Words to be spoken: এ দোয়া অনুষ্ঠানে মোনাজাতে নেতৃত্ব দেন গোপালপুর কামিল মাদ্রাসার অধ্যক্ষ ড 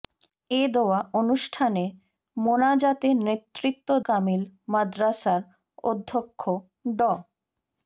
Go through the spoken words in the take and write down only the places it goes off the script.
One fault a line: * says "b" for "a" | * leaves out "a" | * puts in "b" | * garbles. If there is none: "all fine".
* leaves out "দেন গোপালপুর"